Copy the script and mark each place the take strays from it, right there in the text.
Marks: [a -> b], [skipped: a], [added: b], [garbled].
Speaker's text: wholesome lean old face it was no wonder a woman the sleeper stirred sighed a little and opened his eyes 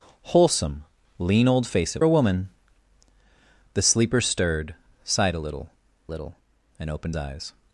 wholesome lean old face it [skipped: was no wonder] a woman the sleeper stirred sighed a little [added: little] and opened [skipped: his] eyes